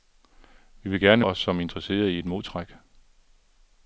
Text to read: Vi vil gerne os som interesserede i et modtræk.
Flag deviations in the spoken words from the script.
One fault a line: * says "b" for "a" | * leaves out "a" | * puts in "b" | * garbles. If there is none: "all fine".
all fine